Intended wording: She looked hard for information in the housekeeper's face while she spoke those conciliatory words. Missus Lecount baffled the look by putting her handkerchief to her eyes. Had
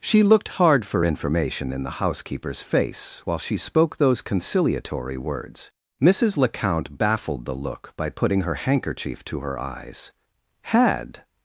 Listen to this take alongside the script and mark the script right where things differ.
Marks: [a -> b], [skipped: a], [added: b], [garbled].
She looked hard for information in the housekeeper's face while she spoke those conciliatory words. Missus Lecount baffled the look by putting her handkerchief to her eyes. Had